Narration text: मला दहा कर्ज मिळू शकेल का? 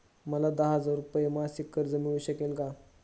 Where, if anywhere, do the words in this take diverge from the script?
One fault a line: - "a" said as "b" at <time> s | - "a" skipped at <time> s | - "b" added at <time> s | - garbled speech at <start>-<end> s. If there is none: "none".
- "हजार रुपये मासिक" added at 0.8 s